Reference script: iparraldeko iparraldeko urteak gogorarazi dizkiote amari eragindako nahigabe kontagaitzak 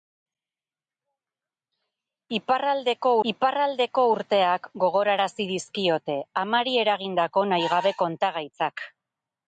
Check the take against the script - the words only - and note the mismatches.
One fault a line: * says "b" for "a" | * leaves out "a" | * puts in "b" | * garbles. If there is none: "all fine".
all fine